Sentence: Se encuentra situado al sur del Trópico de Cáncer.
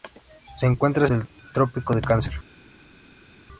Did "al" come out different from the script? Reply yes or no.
yes